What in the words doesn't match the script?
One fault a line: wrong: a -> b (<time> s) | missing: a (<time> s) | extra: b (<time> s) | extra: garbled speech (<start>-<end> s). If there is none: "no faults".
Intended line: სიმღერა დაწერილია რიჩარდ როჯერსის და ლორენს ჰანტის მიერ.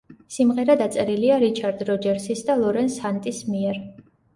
no faults